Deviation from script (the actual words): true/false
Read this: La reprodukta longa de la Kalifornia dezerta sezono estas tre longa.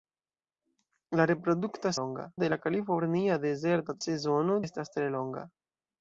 false